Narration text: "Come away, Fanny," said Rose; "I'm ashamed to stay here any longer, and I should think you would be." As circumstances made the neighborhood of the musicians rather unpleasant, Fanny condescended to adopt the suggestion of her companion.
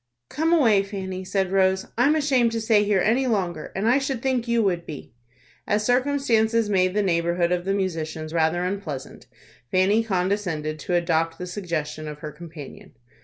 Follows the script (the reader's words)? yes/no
yes